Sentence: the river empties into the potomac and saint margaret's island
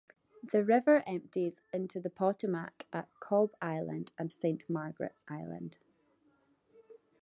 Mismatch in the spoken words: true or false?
true